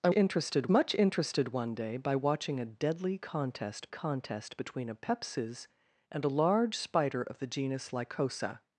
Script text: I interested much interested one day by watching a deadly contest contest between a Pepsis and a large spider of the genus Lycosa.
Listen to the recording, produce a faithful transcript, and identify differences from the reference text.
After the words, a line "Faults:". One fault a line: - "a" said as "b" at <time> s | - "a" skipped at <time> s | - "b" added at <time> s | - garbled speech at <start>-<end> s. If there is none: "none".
I interested much interested one day by watching a deadly contest contest between a Pepsis and a large spider of the genus Lycosa.
Faults:
none